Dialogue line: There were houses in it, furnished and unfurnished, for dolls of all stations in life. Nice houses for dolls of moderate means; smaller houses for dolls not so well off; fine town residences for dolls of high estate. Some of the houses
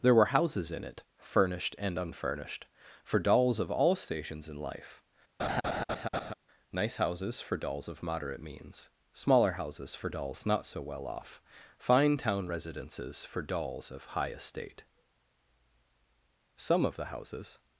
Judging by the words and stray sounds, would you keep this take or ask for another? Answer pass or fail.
fail